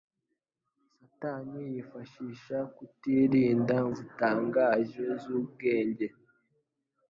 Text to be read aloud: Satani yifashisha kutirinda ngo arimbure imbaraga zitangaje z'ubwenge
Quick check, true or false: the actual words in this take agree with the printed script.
false